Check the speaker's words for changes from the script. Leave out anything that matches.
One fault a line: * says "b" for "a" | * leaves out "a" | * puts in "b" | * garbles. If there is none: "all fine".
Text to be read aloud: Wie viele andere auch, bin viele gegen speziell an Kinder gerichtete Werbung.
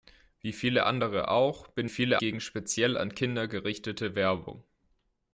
all fine